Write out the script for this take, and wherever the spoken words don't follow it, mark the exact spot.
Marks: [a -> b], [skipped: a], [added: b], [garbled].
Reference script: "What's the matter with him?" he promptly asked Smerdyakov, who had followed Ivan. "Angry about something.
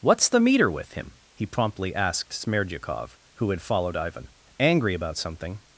"What's the [matter -> meter] with him?" he promptly asked Smerdyakov, who had followed Ivan. "Angry about something.